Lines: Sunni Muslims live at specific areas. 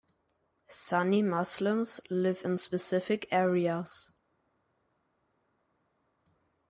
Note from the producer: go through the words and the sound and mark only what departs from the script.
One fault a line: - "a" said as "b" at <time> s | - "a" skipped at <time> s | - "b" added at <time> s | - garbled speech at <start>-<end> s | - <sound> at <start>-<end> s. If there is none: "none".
- "at" said as "in" at 2.4 s